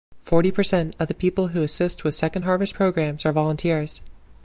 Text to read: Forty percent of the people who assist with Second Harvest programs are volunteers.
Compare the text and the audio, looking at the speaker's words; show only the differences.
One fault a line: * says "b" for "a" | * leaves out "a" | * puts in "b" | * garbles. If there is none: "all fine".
all fine